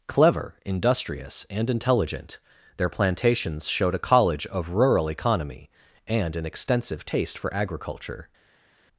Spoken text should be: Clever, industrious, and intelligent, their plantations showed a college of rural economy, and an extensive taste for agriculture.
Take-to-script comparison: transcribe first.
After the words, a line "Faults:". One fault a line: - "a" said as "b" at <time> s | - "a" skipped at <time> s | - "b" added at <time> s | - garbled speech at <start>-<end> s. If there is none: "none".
Clever, industrious, and intelligent, their plantations showed a college of rural economy, and an extensive taste for agriculture.
Faults:
none